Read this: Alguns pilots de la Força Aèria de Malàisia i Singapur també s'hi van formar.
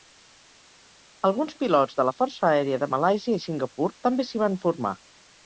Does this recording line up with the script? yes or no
yes